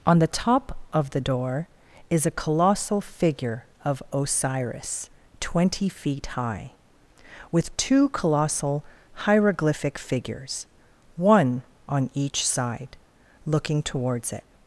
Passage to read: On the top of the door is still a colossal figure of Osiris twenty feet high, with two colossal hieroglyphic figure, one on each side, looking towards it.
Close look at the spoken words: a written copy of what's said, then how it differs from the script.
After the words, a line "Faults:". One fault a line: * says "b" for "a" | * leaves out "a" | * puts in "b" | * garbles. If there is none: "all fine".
On the top of the door is a colossal figure of Osiris twenty feet high, with two colossal hieroglyphic figures, one on each side, looking towards it.
Faults:
* leaves out "still"
* says "figures" for "figure"